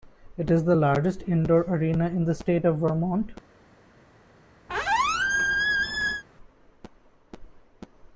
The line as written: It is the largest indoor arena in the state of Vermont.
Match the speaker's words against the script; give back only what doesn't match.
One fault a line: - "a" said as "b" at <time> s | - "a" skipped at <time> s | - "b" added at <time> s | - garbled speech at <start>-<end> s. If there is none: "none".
none